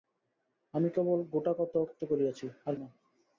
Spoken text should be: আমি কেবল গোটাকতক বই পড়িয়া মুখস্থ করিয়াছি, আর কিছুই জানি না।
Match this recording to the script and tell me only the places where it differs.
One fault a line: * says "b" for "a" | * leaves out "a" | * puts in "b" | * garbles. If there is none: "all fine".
* leaves out "বই পড়িয়া মুখস্থ"
* leaves out "কিছুই জানি"